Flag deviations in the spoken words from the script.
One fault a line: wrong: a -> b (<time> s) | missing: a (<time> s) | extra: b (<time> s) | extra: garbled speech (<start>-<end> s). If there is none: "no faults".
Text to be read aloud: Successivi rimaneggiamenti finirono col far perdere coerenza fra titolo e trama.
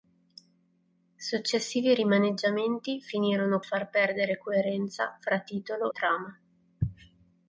missing: col (3.6 s)
missing: e (5.9 s)